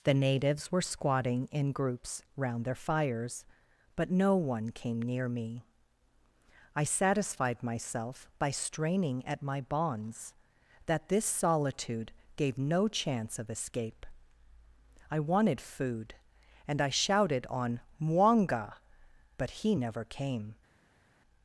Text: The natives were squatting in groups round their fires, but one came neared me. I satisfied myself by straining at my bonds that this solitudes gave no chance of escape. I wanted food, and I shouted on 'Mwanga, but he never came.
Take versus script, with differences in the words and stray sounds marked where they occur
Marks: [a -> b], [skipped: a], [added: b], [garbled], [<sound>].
The natives were squatting in groups round their fires, but [added: no] one came [neared -> near] me. I satisfied myself by straining at my bonds that this [solitudes -> solitude] gave no chance of escape. I wanted food, and I shouted on 'Mwanga, but he never came.